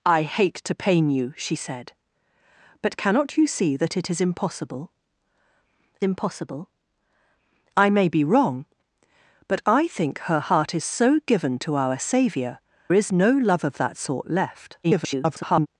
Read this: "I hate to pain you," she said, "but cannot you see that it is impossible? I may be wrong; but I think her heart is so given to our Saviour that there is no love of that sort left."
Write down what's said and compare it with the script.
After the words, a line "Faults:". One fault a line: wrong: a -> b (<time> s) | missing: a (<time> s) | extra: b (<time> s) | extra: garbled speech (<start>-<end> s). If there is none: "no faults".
"I hate to pain you," she said, "but cannot you see that it is impossible impossible? I may be wrong; but I think her heart is so given to our Saviour is no love of that sort left." [garbled]
Faults:
extra: impossible (6.0 s)
missing: that there (12.6 s)
extra: garbled speech (14.8-15.7 s)